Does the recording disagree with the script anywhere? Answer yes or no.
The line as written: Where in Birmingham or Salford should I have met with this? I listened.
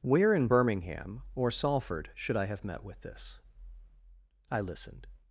no